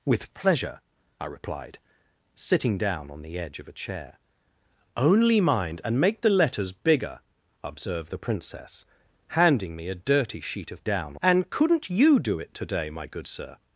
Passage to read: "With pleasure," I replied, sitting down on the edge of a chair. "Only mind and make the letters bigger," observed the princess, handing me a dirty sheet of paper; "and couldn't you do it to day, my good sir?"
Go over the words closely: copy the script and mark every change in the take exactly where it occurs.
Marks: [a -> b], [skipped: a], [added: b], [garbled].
"With pleasure," I replied, sitting down on the edge of a chair. "Only mind and make the letters bigger," observed the princess, handing me a dirty sheet of [paper; -> down] "and couldn't you do it to day, my good sir?"